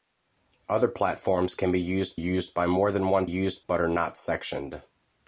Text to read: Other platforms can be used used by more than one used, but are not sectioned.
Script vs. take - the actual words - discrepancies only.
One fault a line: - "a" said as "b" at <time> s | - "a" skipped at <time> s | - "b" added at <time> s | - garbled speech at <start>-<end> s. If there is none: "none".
none